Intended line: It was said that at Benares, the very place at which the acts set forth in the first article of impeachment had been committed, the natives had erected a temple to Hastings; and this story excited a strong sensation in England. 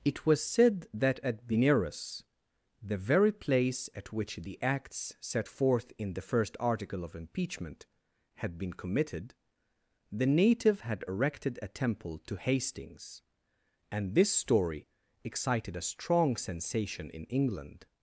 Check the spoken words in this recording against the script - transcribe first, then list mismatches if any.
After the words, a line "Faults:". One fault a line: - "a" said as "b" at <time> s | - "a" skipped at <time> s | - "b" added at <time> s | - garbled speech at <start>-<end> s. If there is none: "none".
It was said that at Benares, the very place at which the acts set forth in the first article of impeachment had been committed, the native had erected a temple to Hastings; and this story excited a strong sensation in England.
Faults:
- "natives" said as "native" at 10.3 s